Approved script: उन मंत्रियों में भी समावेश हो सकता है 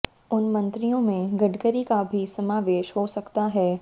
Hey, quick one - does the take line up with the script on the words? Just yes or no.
no